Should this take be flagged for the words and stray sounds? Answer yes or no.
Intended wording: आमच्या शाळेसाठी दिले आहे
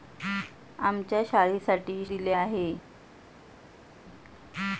no